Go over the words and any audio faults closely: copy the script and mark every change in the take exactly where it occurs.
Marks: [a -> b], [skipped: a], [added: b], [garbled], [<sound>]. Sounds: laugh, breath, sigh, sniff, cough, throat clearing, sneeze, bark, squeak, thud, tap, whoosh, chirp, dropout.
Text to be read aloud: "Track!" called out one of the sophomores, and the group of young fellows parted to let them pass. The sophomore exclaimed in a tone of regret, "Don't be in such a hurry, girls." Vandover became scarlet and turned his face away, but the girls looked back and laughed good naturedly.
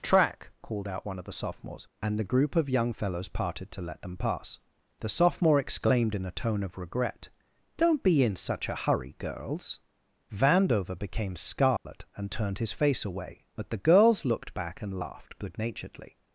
"Track!" called out one of the sophomores, and the group of young fellows parted to let them pass. The sophomore exclaimed in a tone of regret, "Don't be in such a hurry, girls." Vandover became scarlet [dropout] and turned his face away, but the girls looked back and laughed good naturedly.